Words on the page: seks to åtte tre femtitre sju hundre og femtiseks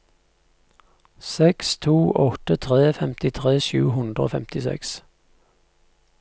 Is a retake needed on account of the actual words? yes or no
no